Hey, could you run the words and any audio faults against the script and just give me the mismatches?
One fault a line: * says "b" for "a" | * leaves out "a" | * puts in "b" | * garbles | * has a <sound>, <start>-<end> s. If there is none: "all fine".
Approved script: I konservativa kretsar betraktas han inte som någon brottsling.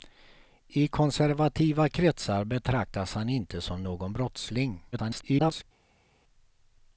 * garbles